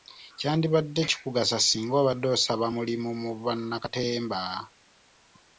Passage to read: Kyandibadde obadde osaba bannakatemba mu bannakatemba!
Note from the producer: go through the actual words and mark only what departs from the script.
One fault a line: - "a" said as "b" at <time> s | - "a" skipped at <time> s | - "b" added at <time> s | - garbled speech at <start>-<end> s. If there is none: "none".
- "kikugasa singa" added at 1.1 s
- "bannakatemba" said as "mulimu" at 2.8 s